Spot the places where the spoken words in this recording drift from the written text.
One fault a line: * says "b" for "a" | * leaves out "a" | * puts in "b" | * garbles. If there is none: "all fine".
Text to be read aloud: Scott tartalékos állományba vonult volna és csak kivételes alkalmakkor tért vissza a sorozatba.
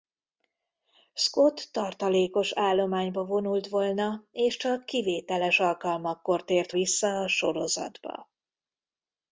all fine